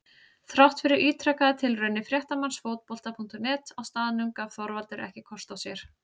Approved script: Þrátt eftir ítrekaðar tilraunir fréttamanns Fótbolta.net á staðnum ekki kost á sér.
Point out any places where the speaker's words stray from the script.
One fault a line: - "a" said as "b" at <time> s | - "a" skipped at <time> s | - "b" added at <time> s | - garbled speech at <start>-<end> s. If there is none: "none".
- "eftir" said as "fyrir" at 0.8 s
- "gaf Þorvaldur" added at 4.4 s